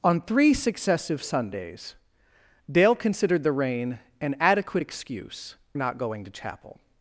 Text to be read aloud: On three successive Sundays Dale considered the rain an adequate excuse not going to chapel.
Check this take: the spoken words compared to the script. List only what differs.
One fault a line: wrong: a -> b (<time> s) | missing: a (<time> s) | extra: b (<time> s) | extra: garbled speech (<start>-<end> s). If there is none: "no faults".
no faults